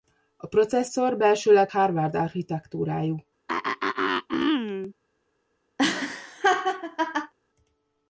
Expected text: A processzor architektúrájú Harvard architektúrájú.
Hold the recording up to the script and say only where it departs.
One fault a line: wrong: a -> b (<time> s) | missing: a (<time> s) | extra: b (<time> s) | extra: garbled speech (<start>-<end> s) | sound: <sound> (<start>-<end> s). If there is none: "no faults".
wrong: architektúrájú -> belsőleg (1.2 s)
sound: throat clearing (3.5-4.9 s)
sound: laugh (5.8-7.3 s)